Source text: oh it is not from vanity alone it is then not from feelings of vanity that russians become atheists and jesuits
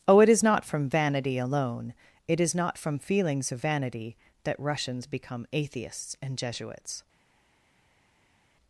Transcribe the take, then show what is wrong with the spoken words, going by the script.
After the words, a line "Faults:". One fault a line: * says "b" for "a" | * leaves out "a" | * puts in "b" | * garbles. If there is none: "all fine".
oh it is not from vanity alone it is not from feelings of vanity that russians become atheists and jesuits
Faults:
* leaves out "then"